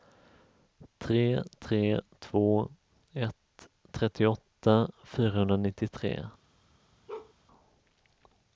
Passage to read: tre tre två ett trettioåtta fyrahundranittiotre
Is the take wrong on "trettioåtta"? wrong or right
right